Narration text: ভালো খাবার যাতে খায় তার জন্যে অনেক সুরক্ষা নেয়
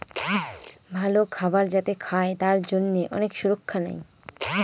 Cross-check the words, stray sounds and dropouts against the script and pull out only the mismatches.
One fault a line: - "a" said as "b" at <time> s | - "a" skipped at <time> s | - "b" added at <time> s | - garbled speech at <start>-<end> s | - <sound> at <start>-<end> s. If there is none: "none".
none